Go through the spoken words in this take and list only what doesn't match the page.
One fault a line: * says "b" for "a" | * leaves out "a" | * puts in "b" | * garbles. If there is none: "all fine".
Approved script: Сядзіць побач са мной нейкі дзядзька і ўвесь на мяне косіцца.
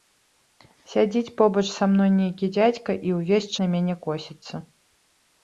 all fine